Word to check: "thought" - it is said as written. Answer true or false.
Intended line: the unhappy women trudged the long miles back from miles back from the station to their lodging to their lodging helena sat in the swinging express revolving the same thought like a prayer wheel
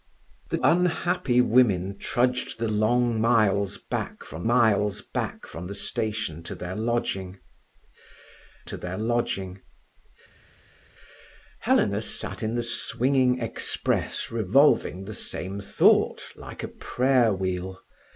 true